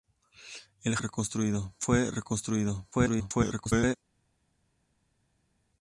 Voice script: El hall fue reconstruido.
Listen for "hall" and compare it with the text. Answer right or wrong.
wrong